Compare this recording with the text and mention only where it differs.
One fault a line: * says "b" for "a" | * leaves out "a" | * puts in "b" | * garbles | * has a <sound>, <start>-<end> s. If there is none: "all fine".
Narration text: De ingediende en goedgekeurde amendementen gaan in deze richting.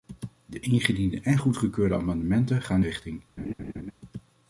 * leaves out "in deze"
* has a laugh, 3.4-3.9 s